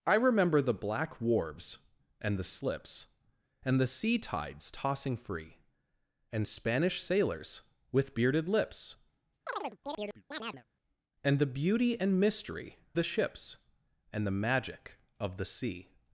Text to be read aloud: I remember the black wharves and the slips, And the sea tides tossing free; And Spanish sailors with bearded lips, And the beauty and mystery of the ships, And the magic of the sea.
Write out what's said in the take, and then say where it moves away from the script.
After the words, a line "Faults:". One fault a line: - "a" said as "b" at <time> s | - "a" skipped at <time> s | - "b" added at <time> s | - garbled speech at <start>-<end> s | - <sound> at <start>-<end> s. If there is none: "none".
I remember the black wharves and the slips, And the sea tides tossing free; And Spanish sailors with bearded lips, And the beauty and mystery the ships, And the magic of the sea.
Faults:
- chirp at 9.5-10.6 s
- "of" skipped at 12.8 s